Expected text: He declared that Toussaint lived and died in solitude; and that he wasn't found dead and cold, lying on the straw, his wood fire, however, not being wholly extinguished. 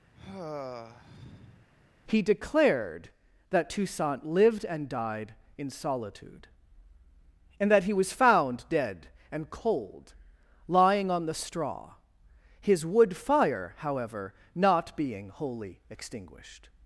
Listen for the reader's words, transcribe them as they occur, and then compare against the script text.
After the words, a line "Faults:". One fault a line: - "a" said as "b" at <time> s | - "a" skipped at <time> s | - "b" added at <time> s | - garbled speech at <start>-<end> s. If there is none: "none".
He declared that Toussaint lived and died in solitude; and that he was found dead and cold, lying on the straw, his wood fire, however, not being wholly extinguished.
Faults:
- "wasn't" said as "was" at 7.9 s